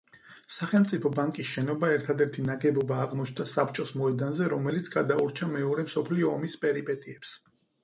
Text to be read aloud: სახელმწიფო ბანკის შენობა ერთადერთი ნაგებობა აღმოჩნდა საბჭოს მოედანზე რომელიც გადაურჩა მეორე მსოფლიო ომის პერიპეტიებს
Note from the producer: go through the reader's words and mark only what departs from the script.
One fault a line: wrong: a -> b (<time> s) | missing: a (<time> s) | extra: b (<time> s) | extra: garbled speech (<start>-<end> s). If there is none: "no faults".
no faults